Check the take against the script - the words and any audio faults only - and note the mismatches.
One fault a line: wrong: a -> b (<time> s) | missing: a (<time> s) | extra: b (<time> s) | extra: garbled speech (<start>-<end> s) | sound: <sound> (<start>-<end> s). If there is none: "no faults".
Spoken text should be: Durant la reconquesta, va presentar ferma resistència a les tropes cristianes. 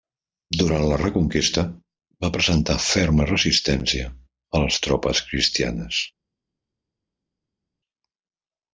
no faults